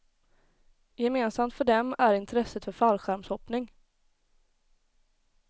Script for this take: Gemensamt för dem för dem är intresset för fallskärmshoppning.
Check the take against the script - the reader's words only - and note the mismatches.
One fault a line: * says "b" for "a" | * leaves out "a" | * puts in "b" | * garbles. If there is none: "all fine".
* leaves out "för dem"